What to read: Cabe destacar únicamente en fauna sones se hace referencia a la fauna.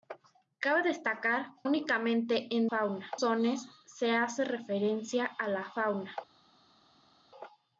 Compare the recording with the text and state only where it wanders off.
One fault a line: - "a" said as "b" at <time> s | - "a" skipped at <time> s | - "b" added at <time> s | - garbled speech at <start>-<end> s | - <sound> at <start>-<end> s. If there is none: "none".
none